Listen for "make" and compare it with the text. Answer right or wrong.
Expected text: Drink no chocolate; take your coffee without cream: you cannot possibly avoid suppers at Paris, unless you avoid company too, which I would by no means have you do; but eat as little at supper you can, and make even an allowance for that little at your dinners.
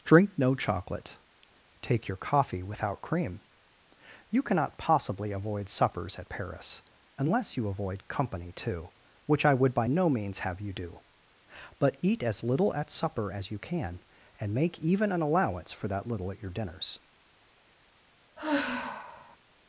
right